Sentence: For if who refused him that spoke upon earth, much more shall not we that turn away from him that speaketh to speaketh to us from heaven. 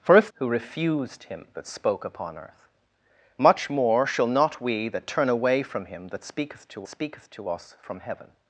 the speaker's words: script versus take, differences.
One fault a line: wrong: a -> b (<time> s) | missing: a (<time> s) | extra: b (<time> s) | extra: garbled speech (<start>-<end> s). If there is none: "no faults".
no faults